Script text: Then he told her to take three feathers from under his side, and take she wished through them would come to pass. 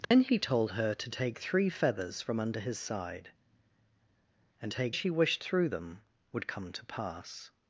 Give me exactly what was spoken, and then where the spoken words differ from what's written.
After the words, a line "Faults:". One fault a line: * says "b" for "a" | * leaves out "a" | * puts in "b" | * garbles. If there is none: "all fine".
Then he told her to take three feathers from under his side, and take she wished through them would come to pass.
Faults:
all fine